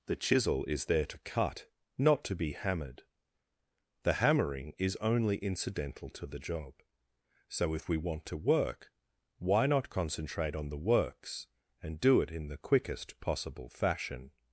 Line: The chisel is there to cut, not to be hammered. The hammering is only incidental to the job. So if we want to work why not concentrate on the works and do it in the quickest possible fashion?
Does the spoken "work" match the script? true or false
true